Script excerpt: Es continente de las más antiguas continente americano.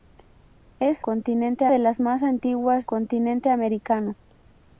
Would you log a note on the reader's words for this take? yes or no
no